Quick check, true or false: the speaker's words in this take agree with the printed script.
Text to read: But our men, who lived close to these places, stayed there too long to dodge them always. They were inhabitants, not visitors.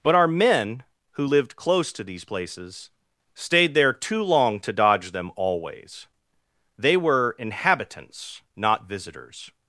true